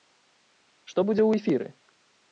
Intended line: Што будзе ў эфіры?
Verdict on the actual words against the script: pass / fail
pass